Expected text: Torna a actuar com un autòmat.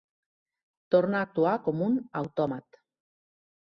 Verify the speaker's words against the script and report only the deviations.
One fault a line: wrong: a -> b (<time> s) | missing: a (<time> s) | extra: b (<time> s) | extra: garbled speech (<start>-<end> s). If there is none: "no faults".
no faults